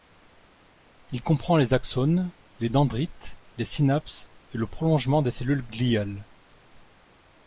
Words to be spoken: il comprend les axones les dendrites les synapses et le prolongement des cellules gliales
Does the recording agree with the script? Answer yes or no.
yes